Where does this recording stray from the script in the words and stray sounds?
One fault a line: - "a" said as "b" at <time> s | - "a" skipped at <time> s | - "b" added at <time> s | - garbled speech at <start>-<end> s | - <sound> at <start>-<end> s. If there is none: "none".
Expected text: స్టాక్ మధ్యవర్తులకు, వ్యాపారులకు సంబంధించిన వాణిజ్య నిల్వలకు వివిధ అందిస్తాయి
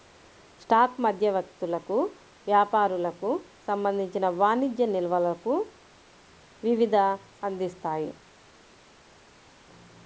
none